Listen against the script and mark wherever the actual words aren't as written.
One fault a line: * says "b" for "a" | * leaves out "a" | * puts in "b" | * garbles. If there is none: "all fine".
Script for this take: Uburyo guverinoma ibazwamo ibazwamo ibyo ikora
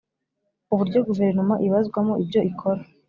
* leaves out "ibazwamo"